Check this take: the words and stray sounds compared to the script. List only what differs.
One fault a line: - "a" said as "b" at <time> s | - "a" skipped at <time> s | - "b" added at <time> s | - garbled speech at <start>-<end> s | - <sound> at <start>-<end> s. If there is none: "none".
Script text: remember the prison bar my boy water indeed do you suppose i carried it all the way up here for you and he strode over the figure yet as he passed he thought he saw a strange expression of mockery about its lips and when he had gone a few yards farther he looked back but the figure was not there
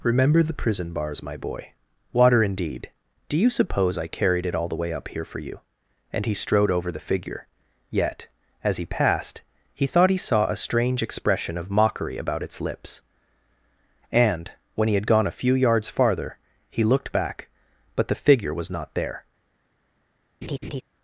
- "bar" said as "bars" at 0.9 s
- laugh at 20.4-20.8 s